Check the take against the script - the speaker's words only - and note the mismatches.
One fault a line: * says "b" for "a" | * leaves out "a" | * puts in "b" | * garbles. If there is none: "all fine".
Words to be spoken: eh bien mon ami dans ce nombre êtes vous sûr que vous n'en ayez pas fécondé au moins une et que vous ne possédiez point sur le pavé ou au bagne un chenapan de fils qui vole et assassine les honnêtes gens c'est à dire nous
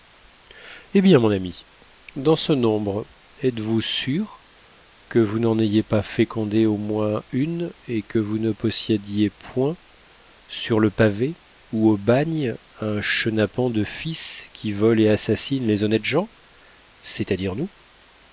all fine